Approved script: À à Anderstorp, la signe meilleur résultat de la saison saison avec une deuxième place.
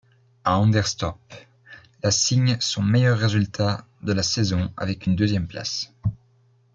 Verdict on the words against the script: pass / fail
fail